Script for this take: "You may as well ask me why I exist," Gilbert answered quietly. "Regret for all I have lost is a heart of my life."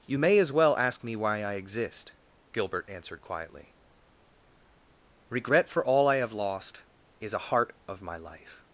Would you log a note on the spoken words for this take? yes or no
no